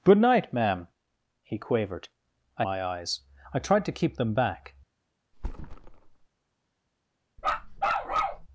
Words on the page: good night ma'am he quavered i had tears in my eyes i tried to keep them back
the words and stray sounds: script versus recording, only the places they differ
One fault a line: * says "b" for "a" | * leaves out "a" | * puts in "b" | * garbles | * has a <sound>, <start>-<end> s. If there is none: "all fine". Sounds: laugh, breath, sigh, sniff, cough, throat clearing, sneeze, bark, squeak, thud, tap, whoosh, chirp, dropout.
* leaves out "had tears in"
* has a thud, 5.3-6.3 s
* has a bark, 7.4-8.5 s